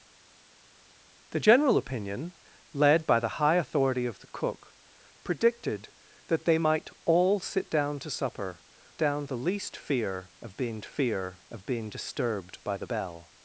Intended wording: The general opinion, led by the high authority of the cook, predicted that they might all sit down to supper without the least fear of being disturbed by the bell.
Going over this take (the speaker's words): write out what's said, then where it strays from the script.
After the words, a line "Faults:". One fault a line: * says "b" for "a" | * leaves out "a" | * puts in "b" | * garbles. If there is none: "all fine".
The general opinion, led by the high authority of the cook, predicted that they might all sit down to supper down the least fear of being fear of being disturbed by the bell.
Faults:
* says "down" for "without"
* puts in "fear of being"